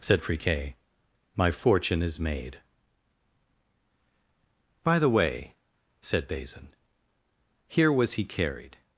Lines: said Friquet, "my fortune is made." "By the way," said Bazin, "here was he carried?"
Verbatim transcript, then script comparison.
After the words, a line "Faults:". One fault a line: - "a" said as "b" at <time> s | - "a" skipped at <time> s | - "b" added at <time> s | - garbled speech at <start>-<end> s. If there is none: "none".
said Friquet, "my fortune is made." "By the way," said Bazin, "here was he carried?"
Faults:
none